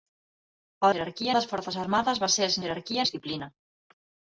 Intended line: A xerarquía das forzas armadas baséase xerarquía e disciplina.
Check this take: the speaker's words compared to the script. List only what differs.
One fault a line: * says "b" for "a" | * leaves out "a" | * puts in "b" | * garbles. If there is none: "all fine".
all fine